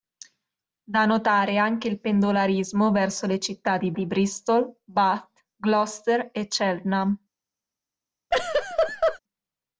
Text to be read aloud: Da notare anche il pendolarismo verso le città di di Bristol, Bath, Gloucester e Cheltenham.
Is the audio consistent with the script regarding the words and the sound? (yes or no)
no